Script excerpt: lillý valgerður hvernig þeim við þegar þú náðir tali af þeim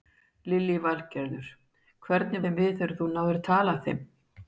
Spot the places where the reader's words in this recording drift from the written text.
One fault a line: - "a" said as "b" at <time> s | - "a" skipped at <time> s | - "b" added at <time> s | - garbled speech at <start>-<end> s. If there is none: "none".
none